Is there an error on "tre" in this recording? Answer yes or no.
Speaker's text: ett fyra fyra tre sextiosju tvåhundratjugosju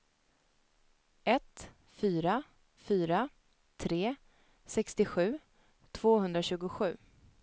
no